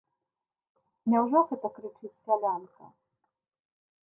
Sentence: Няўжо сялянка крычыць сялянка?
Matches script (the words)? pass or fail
fail